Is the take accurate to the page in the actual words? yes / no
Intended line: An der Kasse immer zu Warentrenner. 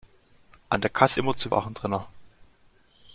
yes